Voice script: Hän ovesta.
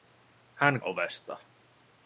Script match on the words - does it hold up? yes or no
yes